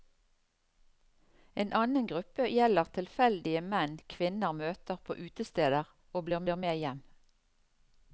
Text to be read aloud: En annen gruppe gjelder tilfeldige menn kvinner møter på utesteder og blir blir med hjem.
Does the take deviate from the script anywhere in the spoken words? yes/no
no